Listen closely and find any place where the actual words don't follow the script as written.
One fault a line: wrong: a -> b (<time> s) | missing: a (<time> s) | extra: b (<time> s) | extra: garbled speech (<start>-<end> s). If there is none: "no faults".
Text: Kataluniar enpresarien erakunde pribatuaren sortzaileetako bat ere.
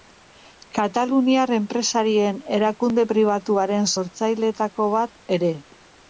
no faults